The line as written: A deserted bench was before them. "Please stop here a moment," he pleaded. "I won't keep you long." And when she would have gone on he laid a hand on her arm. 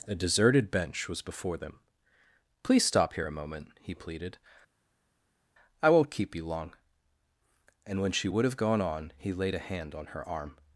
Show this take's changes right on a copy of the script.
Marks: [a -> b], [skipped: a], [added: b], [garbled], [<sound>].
A deserted bench was before them. "Please stop here a moment," he pleaded. "I won't keep you long." And when she would have gone on he laid a hand on her arm.